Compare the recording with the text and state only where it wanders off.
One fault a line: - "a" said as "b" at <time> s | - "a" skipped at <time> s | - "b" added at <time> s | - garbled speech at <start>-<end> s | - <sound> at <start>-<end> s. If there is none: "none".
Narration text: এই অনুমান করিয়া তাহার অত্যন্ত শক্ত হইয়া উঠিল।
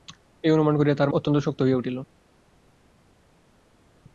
none